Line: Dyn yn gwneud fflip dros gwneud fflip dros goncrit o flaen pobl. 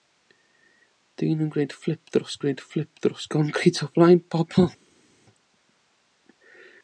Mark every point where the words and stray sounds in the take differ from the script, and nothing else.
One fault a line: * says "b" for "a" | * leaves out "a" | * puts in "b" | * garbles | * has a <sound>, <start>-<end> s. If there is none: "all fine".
all fine